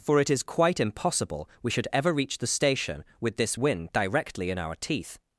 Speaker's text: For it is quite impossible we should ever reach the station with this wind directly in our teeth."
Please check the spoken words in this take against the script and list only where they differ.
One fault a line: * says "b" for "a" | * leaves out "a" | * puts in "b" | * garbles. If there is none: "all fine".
all fine